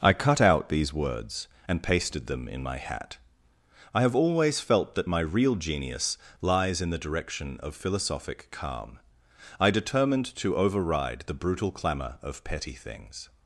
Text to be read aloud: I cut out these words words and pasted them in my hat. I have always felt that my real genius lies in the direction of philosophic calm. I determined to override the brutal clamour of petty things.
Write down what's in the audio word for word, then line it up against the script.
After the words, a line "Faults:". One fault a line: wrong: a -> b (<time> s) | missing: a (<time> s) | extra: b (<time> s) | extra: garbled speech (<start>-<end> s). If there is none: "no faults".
I cut out these words and pasted them in my hat. I have always felt that my real genius lies in the direction of philosophic calm. I determined to override the brutal clamour of petty things.
Faults:
missing: words (1.5 s)